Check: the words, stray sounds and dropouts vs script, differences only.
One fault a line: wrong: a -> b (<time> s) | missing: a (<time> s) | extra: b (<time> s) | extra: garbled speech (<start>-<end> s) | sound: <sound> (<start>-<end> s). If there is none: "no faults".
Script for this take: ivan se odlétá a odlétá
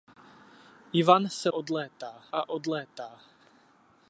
no faults